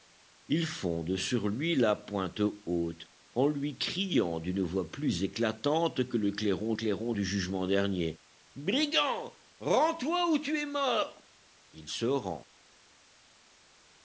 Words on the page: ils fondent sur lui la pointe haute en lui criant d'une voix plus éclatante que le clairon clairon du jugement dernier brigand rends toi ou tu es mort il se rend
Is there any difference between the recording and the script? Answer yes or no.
no